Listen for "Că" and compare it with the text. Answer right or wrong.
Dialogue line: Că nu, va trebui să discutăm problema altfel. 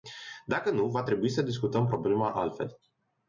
wrong